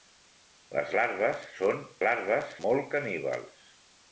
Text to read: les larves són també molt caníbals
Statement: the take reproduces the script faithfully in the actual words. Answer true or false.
false